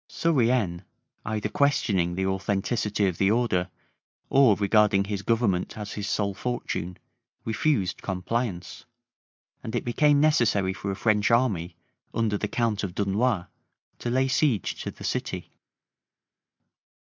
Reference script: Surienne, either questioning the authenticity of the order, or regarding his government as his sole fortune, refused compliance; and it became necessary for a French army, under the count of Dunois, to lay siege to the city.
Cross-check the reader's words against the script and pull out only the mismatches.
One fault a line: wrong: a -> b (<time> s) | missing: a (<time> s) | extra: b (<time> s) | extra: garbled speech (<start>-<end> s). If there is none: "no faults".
no faults